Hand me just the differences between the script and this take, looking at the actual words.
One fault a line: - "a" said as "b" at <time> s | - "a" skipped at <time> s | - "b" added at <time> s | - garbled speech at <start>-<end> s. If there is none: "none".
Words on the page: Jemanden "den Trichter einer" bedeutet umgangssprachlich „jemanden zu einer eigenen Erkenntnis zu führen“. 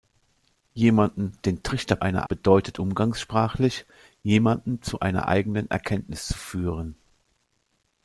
none